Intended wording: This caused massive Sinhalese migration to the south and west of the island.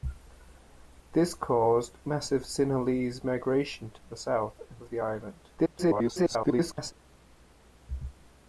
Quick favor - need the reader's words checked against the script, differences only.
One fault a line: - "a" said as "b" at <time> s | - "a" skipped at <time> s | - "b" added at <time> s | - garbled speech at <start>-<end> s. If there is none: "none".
- "west" skipped at 4.8 s
- garbled speech at 5.6-6.9 s